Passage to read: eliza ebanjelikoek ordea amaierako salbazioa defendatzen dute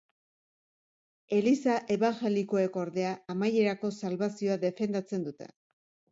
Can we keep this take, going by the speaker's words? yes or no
yes